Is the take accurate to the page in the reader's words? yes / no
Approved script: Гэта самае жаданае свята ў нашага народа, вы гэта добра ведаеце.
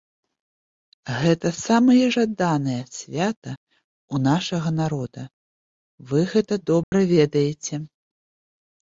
yes